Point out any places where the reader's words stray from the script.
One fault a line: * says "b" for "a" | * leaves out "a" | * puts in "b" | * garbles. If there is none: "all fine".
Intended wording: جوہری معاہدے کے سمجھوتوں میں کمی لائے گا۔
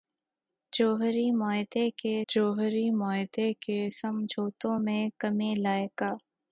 * puts in "جوہری معاہدے کے"